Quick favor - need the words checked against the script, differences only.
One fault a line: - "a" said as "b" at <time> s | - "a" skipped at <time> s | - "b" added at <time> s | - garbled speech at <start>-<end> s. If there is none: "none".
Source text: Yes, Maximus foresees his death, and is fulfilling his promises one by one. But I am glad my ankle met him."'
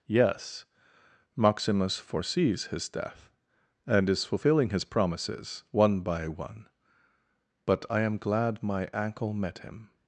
none